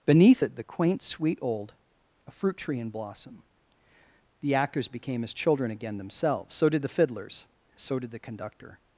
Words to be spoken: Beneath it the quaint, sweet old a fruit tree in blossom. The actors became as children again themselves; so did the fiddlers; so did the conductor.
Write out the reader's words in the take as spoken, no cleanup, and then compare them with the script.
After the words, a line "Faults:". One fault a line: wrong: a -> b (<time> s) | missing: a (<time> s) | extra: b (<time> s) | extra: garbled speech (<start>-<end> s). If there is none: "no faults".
Beneath it the quaint, sweet old a fruit tree in blossom. The actors became as children again themselves; so did the fiddlers; so did the conductor.
Faults:
no faults